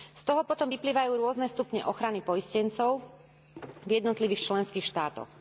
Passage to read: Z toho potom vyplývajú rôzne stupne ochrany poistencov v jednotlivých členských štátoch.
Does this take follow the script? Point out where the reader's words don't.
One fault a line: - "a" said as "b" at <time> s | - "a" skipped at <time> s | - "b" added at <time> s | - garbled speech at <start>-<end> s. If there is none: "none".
none